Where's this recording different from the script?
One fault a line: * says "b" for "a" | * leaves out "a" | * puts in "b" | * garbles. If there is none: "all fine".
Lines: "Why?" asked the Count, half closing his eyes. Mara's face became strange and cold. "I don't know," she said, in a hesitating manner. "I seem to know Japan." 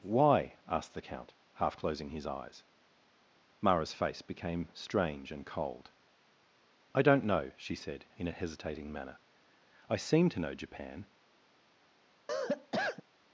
all fine